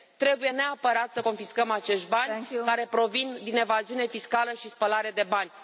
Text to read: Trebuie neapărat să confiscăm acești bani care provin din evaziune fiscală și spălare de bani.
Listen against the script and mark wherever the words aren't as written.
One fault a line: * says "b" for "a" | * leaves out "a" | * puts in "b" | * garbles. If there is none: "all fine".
all fine